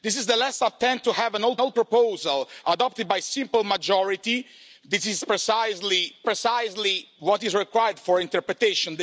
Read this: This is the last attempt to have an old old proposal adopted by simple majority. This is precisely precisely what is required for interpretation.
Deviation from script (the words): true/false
false